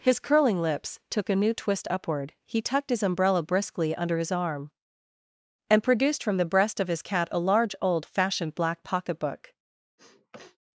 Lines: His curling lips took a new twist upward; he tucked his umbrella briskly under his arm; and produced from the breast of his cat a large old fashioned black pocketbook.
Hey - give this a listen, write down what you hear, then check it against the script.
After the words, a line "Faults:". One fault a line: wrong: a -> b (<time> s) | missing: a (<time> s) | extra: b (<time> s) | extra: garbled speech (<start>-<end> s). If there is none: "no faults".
His curling lips took a new twist upward; he tucked his umbrella briskly under his arm; and produced from the breast of his cat a large old fashioned black pocketbook.
Faults:
no faults